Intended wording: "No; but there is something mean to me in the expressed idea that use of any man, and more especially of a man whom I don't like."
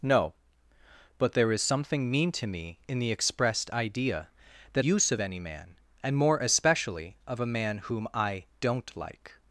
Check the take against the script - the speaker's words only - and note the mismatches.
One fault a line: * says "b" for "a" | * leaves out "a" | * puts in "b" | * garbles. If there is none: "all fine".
all fine